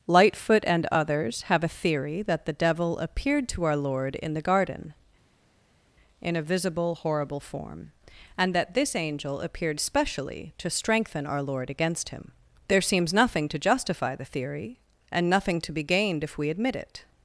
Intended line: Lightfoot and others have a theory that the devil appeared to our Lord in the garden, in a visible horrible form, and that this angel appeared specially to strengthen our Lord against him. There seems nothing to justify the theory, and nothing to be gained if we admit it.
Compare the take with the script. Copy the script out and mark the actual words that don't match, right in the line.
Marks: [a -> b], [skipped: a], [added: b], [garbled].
Lightfoot and others have a theory that the devil appeared to our Lord in the garden, in a visible horrible form, and that this angel appeared specially to strengthen our Lord against him. There seems nothing to justify the theory, and nothing to be gained if we admit it.